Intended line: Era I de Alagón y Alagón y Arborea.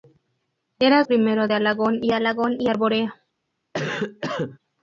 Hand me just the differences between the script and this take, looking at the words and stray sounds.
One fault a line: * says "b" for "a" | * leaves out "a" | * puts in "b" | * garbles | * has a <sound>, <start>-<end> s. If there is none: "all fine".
* has a cough, 3.7-4.6 s